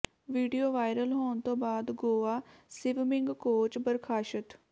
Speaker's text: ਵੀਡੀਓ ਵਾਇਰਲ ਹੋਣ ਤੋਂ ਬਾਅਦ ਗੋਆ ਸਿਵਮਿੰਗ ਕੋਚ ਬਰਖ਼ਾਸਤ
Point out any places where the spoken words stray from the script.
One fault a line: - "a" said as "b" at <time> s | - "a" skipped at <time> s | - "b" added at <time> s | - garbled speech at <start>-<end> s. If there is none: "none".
none